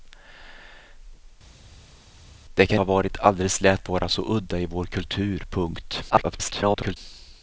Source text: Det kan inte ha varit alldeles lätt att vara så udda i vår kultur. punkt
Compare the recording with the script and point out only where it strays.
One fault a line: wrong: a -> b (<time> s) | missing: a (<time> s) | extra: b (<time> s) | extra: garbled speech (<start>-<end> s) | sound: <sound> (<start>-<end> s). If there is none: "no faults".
missing: inte (2.8 s)
missing: att (3.9 s)
extra: garbled speech (6.1-7.0 s)